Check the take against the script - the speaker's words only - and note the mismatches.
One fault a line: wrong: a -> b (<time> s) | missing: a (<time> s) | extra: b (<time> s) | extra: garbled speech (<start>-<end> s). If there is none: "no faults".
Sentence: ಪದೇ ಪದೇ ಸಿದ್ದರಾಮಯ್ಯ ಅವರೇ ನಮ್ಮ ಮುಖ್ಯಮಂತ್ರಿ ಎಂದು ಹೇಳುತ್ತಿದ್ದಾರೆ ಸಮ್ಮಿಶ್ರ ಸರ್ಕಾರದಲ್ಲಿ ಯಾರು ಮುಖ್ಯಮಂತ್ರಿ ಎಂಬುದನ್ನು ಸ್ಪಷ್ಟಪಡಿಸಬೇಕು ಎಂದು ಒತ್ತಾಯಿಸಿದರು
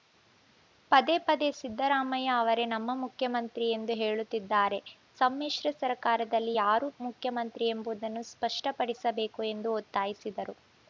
no faults